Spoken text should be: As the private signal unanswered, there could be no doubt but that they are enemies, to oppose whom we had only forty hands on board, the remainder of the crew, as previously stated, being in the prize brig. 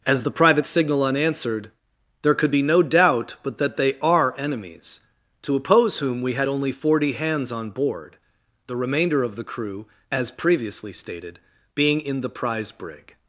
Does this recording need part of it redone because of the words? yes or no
no